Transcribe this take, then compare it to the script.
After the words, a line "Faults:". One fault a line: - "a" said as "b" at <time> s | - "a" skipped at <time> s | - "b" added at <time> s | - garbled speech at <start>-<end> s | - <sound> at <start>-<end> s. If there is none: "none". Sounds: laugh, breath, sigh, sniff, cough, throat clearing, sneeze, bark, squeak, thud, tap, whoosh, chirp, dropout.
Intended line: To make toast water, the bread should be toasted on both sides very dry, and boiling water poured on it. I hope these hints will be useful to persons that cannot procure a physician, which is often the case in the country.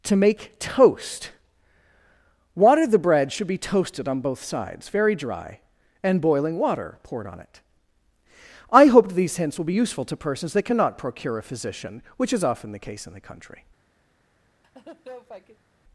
To make toast water, the bread should be toasted on both sides very dry, and boiling water poured on it. I hope these hints will be useful to persons that cannot procure a physician, which is often the case in the country.
Faults:
- laugh at 14.6-15.7 s